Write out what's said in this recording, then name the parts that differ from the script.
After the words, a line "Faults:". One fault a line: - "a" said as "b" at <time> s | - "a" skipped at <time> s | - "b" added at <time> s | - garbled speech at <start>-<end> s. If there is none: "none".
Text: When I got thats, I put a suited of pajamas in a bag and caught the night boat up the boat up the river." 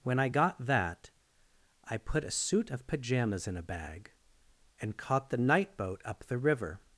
When I got that, I put a suit of pajamas in a bag and caught the night boat up the river."
Faults:
- "thats" said as "that" at 0.6 s
- "suited" said as "suit" at 2.3 s
- "boat up the" skipped at 6.4 s